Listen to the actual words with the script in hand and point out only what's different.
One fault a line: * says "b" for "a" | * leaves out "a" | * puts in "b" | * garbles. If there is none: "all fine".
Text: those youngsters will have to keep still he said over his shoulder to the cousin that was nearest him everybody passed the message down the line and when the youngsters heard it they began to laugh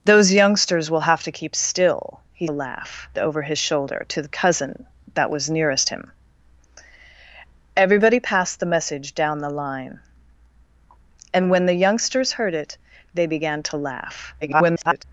* says "laugh" for "said"
* garbles